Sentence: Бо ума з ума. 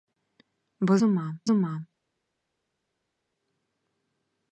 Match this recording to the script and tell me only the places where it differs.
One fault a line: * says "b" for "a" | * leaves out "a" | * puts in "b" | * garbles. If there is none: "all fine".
all fine